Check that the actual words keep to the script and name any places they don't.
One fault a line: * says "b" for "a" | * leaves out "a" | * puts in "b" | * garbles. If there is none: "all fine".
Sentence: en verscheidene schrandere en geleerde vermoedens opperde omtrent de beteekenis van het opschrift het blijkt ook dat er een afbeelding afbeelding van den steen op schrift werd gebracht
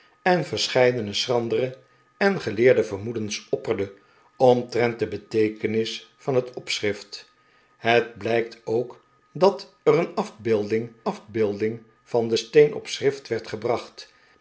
all fine